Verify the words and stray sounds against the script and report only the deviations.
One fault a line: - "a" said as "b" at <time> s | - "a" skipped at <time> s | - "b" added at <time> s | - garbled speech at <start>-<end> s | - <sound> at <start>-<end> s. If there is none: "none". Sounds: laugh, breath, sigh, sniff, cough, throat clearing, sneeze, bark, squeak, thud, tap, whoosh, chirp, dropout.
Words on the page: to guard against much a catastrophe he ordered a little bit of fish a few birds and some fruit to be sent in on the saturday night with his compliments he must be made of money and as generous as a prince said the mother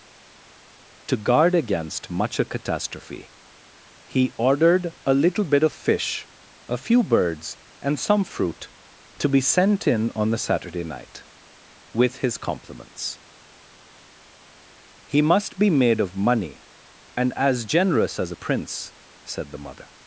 none